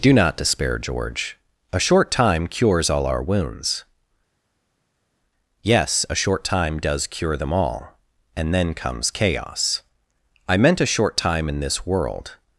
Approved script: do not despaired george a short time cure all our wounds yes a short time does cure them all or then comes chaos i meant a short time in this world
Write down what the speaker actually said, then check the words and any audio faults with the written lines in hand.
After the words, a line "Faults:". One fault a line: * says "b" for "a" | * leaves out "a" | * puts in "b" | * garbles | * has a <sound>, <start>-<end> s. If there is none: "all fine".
do not despair george a short time cures all our wounds yes a short time does cure them all and then comes chaos i meant a short time in this world
Faults:
* says "despair" for "despaired"
* says "cures" for "cure"
* says "and" for "or"